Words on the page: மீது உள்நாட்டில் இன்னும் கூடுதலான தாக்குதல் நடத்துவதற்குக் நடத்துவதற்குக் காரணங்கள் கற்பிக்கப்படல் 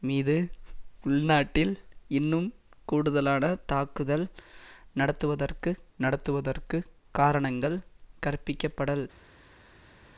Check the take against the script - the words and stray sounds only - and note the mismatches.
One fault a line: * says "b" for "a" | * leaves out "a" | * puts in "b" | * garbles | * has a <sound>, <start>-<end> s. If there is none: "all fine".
all fine